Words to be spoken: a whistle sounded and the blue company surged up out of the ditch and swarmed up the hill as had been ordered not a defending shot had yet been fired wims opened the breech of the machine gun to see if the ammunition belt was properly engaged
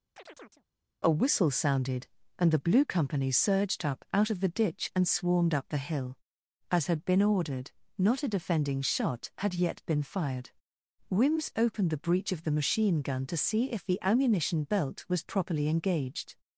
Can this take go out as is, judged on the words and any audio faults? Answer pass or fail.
fail